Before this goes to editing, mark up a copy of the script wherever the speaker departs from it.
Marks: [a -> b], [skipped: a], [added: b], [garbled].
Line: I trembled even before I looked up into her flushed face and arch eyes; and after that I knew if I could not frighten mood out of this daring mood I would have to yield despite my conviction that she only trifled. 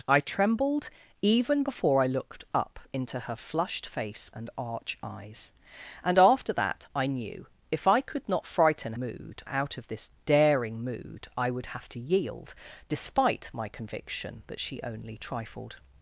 I trembled even before I looked up into her flushed face and arch eyes; and after that I knew if I could not frighten mood out of this daring mood I would have to yield despite my conviction that she only trifled.